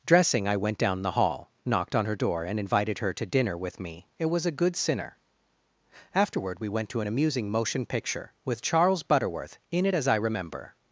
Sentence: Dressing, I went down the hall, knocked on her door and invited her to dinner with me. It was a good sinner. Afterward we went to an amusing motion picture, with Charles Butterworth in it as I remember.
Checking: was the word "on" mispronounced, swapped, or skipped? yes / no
no